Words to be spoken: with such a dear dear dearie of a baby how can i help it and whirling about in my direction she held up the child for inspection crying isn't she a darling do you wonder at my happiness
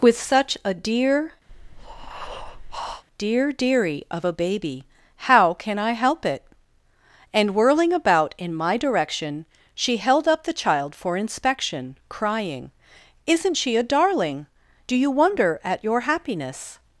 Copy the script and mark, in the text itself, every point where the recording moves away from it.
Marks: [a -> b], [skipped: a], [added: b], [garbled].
with such a dear dear dearie of a baby how can i help it and whirling about in my direction she held up the child for inspection crying isn't she a darling do you wonder at [my -> your] happiness